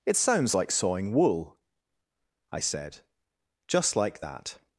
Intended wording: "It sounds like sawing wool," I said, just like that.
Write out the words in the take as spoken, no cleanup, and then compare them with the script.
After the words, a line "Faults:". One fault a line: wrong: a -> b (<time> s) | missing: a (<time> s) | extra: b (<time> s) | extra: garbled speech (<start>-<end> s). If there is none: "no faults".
"It sounds like sawing wool," I said, just like that.
Faults:
no faults